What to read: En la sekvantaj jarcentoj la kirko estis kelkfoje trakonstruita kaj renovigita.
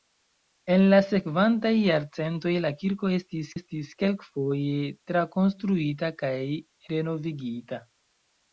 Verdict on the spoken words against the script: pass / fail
fail